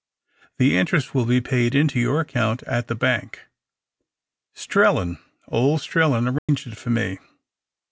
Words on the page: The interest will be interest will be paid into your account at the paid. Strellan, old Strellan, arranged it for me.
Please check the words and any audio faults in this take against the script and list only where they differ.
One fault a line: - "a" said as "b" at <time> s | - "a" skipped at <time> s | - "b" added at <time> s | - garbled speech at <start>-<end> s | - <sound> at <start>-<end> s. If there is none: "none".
- "interest will be" skipped at 1.4 s
- "paid" said as "bank" at 3.0 s
- dropout at 6.4-6.5 s